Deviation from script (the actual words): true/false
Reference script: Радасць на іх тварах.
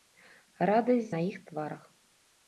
false